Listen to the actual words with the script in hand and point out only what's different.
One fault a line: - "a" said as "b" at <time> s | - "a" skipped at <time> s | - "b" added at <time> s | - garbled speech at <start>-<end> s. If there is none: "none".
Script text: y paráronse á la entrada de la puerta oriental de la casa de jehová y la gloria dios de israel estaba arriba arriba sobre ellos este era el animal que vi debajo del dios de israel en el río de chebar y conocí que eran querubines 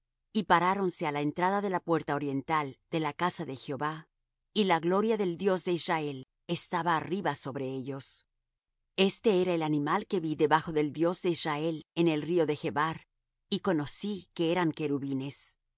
- "del" added at 5.2 s
- "arriba" skipped at 7.3 s